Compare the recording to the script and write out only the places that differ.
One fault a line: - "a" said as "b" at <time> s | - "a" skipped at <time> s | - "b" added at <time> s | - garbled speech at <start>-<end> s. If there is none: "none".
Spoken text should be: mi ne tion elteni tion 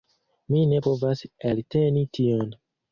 - "tion" said as "povas" at 0.9 s